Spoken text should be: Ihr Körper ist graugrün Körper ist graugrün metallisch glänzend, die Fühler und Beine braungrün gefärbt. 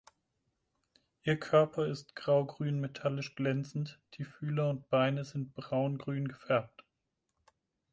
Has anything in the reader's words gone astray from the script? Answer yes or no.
yes